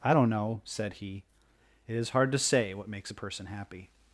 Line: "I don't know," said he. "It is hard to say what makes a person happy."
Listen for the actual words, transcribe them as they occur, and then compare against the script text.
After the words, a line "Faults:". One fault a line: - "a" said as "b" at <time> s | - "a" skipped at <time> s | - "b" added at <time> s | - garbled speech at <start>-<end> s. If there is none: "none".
"I don't know," said he. "It is hard to say what makes a person happy."
Faults:
none